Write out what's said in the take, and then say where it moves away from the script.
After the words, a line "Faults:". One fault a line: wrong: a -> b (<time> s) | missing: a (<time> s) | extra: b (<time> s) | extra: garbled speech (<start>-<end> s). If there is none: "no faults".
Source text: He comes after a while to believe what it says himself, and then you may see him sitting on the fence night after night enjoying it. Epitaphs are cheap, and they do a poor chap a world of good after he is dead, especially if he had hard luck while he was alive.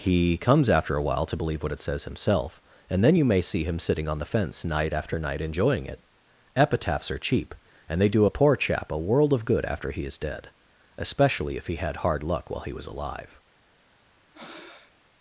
He comes after a while to believe what it says himself, and then you may see him sitting on the fence night after night enjoying it. Epitaphs are cheap, and they do a poor chap a world of good after he is dead, especially if he had hard luck while he was alive.
Faults:
no faults